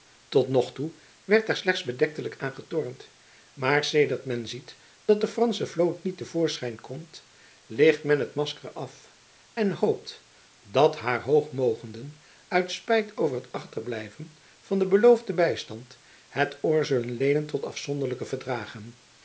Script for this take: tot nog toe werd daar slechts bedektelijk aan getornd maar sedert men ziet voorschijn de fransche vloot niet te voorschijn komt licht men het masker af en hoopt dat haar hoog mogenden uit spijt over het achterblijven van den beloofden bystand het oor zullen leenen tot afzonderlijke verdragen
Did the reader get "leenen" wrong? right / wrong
right